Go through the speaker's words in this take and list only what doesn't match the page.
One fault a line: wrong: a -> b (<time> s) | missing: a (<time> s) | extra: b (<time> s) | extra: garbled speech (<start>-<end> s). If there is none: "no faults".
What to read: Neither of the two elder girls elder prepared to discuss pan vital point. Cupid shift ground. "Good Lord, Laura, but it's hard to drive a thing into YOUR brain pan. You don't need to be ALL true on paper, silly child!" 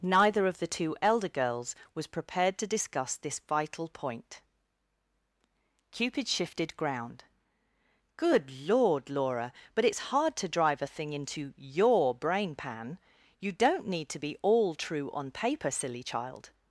wrong: elder -> was (1.9 s)
wrong: pan -> this (3.2 s)
wrong: shift -> shifted (6.3 s)